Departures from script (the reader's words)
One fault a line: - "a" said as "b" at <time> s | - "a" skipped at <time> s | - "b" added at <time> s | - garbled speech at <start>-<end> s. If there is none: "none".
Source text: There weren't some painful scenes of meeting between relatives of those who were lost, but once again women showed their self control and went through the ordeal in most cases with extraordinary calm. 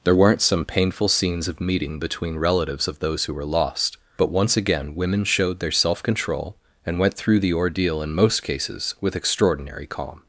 none